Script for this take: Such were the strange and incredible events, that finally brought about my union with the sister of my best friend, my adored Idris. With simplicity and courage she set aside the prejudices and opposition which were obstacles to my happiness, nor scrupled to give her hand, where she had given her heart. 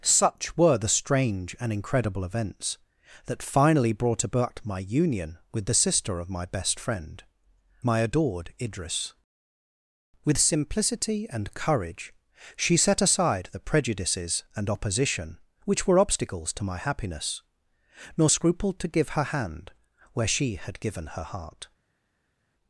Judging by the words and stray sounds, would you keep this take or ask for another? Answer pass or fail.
pass